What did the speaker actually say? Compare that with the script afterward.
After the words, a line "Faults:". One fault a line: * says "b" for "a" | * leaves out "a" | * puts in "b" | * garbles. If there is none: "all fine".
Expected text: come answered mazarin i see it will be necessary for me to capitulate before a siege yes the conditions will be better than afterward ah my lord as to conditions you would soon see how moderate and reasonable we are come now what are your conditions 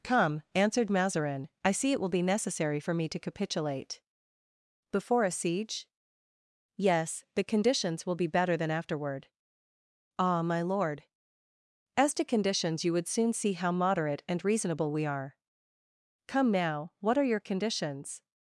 come answered mazarin i see it will be necessary for me to capitulate before a siege yes the conditions will be better than afterward ah my lord as to conditions you would soon see how moderate and reasonable we are come now what are your conditions
Faults:
all fine